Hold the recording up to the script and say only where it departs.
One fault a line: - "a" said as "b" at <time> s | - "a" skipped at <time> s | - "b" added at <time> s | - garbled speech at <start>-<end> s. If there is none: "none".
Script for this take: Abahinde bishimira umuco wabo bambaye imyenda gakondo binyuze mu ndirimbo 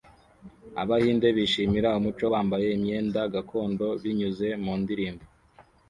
- "wabo" skipped at 2.2 s